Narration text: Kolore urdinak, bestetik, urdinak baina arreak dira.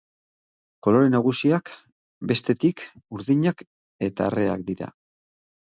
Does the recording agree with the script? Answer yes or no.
no